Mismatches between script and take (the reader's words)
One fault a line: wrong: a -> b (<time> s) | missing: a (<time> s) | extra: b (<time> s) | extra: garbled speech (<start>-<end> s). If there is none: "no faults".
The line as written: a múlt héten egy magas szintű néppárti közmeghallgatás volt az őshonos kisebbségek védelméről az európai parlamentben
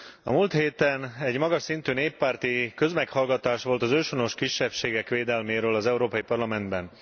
no faults